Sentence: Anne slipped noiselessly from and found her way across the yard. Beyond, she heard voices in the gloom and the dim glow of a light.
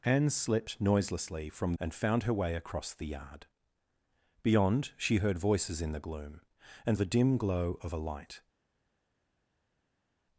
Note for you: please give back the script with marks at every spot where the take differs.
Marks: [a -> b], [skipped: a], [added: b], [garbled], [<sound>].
Anne slipped noiselessly from and found her way across the yard. Beyond, she heard voices in the gloom and the dim glow of a light.